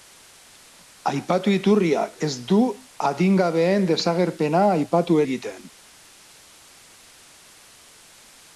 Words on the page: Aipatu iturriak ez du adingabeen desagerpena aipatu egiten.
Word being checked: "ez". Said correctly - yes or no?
yes